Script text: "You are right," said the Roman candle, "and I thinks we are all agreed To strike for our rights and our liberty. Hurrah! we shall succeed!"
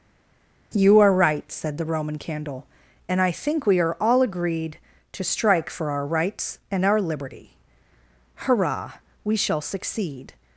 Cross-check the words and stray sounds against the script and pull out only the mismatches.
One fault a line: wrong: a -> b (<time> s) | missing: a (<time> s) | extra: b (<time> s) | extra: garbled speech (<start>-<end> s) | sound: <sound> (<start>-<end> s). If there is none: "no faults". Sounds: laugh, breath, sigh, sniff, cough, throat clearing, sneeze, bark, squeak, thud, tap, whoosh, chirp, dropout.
wrong: thinks -> think (3.3 s)